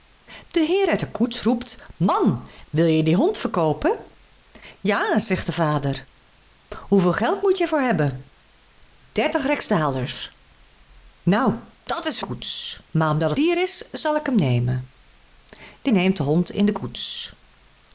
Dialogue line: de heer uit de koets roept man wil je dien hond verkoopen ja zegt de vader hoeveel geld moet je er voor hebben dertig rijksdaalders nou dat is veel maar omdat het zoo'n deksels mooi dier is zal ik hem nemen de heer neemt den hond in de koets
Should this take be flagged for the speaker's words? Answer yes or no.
yes